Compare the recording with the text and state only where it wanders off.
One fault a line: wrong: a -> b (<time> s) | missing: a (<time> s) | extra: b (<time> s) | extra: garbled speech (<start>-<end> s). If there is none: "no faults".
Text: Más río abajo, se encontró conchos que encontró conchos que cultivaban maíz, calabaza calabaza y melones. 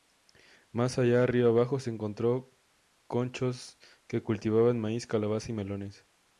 extra: allá (1.0 s)
missing: encontró conchos que (4.2 s)
missing: calabaza (5.5 s)